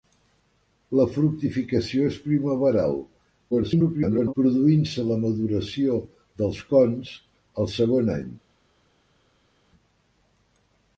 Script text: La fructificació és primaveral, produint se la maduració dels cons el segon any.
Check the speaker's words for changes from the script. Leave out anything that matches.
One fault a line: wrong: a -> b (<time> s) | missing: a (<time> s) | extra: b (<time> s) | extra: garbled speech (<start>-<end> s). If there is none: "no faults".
extra: garbled speech (3.5-4.3 s)